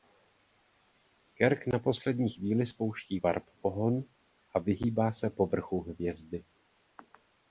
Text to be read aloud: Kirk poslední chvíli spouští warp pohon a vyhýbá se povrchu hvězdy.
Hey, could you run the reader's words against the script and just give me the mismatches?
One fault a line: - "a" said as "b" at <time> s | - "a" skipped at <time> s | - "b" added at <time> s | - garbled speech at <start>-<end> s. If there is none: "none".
- "na" added at 1.7 s